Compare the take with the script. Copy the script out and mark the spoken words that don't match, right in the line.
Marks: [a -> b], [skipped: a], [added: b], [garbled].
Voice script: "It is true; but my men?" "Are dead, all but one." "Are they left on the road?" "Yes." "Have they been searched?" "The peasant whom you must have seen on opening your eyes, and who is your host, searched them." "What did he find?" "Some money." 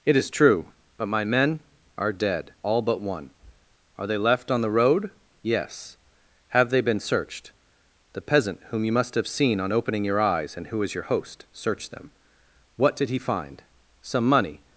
"It is true; but my men?" "Are dead, all but one." "Are they left on the road?" "Yes." "Have they been searched?" "The peasant whom you must have seen on opening your eyes, and who is your host, searched them." "What did he find?" "Some money."